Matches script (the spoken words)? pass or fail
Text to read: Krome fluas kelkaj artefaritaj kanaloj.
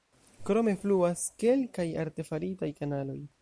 pass